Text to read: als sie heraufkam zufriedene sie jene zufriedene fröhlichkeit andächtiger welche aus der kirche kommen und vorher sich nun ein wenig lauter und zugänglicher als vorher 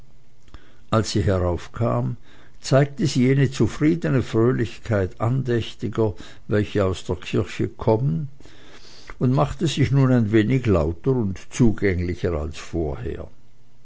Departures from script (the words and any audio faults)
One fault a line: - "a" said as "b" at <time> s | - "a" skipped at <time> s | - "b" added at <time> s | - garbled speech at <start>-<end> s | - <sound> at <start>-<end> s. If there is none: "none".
- "zufriedene" said as "zeigte" at 2.6 s
- "vorher" said as "machte" at 9.3 s